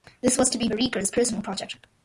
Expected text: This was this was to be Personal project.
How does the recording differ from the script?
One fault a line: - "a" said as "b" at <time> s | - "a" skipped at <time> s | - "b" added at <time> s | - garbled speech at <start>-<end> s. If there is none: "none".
- "this was" skipped at 0.5 s
- "Vereker's" added at 0.7 s